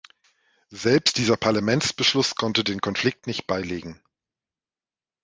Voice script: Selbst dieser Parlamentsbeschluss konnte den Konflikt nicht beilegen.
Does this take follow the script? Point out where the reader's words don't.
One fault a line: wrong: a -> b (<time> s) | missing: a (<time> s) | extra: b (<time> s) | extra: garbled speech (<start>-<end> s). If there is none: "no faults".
no faults